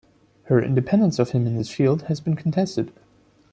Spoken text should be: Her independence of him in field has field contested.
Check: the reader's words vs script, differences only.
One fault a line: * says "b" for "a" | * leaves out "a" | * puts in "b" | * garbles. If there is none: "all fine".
* puts in "this"
* says "been" for "field"